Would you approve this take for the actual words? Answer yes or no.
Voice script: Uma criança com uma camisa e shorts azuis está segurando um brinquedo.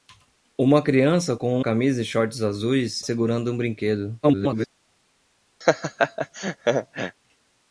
no